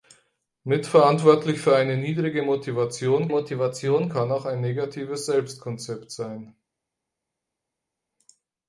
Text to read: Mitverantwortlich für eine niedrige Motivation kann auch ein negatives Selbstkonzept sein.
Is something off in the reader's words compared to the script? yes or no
yes